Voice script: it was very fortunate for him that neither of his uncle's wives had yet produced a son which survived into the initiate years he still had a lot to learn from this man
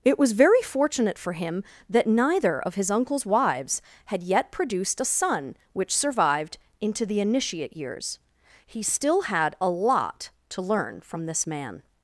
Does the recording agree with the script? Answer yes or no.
yes